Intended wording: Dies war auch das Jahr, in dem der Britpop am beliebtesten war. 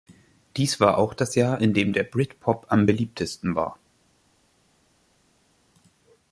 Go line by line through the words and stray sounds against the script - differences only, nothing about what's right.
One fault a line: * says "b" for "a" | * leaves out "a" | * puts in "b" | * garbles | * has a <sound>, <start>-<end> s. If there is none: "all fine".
all fine